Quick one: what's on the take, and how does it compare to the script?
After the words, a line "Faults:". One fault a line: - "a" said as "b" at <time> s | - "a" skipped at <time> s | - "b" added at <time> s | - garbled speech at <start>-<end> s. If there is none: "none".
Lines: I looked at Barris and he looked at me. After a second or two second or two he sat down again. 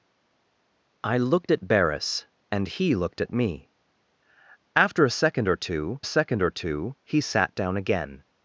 I looked at Barris and he looked at me. After a second or two second or two he sat down again.
Faults:
none